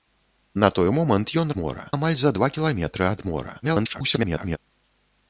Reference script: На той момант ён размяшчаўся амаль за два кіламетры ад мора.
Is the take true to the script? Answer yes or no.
no